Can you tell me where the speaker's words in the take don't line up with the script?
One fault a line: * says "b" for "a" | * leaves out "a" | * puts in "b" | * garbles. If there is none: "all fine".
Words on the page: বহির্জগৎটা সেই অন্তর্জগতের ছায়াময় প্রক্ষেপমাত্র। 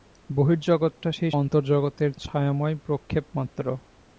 all fine